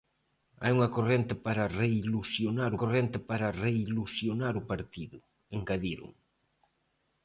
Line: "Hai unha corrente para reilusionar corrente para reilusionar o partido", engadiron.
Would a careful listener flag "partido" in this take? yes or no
no